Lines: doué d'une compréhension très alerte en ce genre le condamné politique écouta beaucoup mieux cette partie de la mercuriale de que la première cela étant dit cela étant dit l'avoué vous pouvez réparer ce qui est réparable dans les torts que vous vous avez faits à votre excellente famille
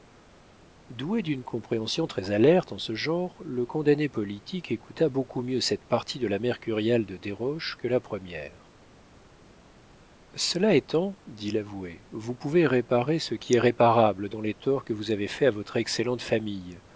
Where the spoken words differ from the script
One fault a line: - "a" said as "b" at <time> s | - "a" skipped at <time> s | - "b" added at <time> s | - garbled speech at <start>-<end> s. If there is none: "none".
- "desroches" added at 7.2 s
- "cela étant dit" skipped at 11.5 s
- "vous" skipped at 15.1 s